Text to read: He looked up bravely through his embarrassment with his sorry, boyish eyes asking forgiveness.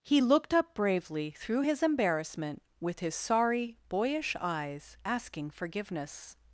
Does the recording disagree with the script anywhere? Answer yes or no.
no